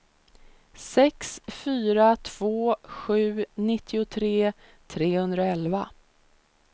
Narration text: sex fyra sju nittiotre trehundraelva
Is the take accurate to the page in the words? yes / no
no